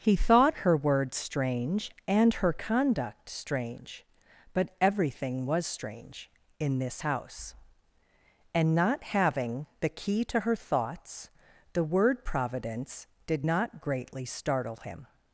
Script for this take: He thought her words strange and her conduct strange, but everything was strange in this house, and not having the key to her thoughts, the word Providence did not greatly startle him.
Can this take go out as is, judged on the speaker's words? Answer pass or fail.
pass